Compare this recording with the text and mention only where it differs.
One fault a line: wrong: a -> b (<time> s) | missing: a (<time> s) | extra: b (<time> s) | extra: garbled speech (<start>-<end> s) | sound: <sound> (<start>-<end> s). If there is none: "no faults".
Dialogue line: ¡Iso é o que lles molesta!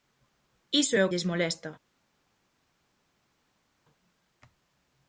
missing: que (1.1 s)